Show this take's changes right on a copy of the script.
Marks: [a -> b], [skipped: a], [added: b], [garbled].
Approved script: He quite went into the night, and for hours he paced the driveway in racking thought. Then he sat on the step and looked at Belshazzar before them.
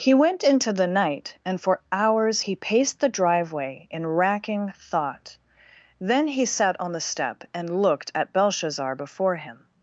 He [skipped: quite] went into the night, and for hours he paced the driveway in racking thought. Then he sat on the step and looked at Belshazzar before [them. -> him]